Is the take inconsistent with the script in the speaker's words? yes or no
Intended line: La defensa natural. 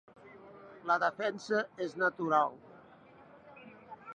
yes